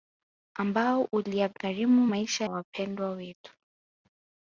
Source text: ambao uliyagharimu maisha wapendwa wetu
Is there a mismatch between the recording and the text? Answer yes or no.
no